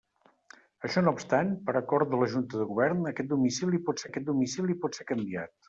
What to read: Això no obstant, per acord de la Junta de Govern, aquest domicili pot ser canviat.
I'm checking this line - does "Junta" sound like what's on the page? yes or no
yes